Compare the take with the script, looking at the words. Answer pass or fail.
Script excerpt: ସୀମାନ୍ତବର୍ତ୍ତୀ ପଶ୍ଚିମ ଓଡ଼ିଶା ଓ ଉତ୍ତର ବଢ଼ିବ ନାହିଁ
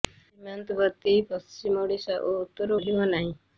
pass